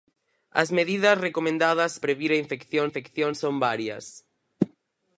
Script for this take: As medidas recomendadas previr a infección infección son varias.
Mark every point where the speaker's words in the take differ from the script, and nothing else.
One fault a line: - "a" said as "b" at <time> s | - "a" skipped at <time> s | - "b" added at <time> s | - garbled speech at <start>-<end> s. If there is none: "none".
none